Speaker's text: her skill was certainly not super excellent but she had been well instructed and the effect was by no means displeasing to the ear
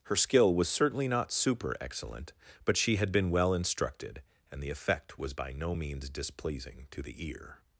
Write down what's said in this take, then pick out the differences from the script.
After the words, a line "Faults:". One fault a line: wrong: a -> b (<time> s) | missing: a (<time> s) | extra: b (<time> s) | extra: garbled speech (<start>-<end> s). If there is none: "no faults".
her skill was certainly not super excellent but she had been well instructed and the effect was by no means displeasing to the ear
Faults:
no faults